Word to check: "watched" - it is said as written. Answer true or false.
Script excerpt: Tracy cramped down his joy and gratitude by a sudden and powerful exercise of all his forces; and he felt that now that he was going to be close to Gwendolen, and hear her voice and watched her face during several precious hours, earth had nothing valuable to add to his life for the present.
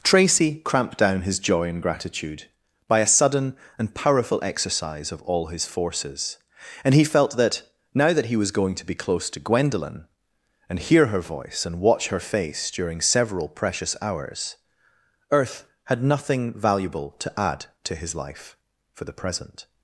false